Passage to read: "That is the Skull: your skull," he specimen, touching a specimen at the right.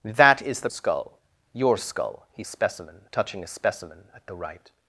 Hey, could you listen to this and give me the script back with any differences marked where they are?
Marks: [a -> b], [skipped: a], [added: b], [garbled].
"That is the Skull: your skull," he specimen, touching a specimen at the right.